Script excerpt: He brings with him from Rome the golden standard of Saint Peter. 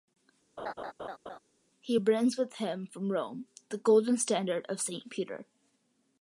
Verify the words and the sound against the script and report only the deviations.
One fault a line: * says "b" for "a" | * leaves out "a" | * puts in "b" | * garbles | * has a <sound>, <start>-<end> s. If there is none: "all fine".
* has a laugh, 0.6-1.4 s